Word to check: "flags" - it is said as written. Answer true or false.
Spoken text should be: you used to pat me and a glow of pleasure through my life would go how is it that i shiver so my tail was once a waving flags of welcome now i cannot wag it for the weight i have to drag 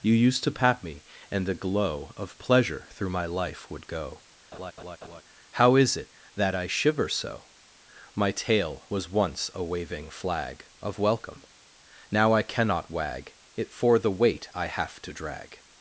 false